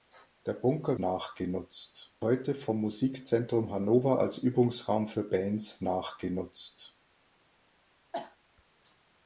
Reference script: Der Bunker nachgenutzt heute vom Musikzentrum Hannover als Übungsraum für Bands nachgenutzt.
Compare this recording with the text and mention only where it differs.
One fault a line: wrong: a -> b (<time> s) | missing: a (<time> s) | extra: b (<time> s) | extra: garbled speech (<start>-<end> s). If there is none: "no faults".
no faults